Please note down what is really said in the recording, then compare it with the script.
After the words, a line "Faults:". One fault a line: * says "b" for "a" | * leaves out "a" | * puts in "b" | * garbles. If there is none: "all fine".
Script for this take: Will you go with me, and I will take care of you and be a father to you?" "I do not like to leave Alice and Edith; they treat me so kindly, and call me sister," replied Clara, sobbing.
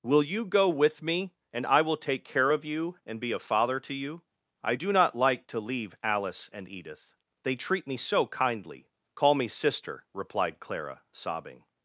Will you go with me, and I will take care of you and be a father to you?" "I do not like to leave Alice and Edith; they treat me so kindly, call me sister," replied Clara, sobbing.
Faults:
* leaves out "and"